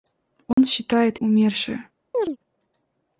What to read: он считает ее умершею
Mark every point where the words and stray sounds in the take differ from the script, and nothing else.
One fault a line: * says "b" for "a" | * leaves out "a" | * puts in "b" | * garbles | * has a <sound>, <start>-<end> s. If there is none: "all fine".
* has a dropout, 0.5-0.6 s
* leaves out "ее"
* has a chirp, 2.1-2.4 s